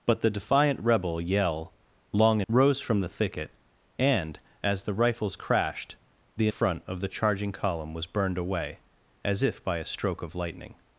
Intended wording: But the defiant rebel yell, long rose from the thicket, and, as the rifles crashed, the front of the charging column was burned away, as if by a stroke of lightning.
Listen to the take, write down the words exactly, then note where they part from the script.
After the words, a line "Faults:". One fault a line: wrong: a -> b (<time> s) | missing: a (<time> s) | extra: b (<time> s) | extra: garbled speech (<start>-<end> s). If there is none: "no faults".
But the defiant rebel yell, long rose from the thicket, and, as the rifles crashed, the front of the charging column was burned away, as if by a stroke of lightning.
Faults:
no faults